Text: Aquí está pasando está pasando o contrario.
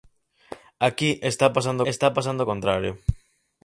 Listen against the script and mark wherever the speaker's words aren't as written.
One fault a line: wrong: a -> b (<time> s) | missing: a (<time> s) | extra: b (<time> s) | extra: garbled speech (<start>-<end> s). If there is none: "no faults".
no faults